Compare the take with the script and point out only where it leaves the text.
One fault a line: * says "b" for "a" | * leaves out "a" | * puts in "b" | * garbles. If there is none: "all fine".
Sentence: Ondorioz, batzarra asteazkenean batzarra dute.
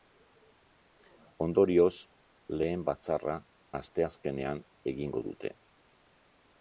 * puts in "lehen"
* says "egingo" for "batzarra"